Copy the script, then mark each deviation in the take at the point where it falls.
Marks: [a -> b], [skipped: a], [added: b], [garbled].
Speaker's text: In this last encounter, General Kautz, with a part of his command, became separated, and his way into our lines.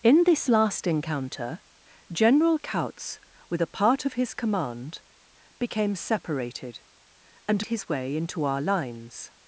In this last encounter, General Kautz, with a part of his command, became separated, and his way into our lines.